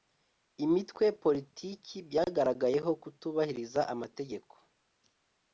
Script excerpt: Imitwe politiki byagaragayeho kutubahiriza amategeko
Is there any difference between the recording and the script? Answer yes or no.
no